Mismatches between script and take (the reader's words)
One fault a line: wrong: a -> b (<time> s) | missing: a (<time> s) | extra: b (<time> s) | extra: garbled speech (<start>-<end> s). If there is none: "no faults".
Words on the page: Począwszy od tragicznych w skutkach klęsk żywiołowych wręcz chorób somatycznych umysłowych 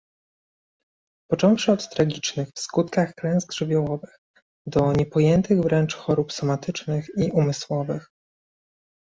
extra: do niepojętych (4.7 s)
extra: i (7.2 s)